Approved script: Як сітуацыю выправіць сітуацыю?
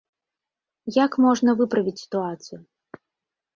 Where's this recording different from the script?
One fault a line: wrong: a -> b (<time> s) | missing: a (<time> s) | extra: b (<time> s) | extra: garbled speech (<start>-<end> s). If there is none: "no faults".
wrong: сітуацыю -> можна (1.3 s)